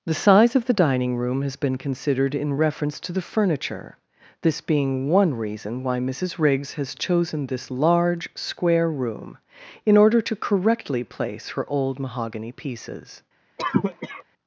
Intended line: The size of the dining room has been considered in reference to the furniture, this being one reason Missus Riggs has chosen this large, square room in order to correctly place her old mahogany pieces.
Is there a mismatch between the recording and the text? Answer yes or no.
yes